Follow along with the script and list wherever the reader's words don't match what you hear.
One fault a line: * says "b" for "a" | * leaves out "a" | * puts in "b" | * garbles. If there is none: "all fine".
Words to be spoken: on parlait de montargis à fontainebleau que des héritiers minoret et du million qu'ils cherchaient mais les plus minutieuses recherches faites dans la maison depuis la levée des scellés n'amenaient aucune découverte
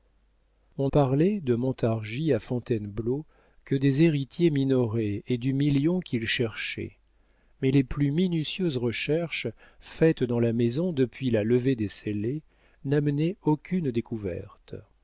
all fine